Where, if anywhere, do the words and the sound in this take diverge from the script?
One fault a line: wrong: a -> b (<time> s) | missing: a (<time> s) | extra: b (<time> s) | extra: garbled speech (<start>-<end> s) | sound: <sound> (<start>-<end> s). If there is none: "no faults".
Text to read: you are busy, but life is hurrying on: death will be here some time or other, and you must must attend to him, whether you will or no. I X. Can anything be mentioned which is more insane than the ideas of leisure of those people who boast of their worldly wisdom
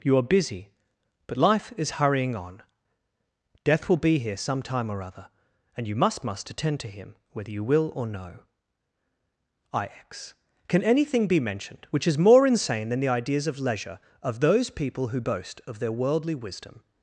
no faults